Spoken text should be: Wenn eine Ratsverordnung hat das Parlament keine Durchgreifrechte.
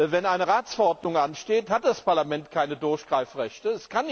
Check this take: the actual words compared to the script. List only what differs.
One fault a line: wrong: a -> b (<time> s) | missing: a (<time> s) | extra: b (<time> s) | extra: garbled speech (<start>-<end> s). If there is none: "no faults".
extra: ansteht (1.1 s)